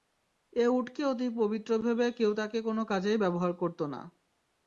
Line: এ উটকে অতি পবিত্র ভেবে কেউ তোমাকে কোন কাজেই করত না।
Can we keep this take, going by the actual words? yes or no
no